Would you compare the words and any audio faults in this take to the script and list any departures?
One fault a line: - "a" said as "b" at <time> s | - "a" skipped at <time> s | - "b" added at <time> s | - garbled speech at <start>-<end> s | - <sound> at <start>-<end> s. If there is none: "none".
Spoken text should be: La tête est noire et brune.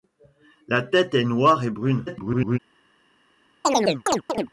- garbled speech at 2.1-2.6 s
- chirp at 3.6-4.5 s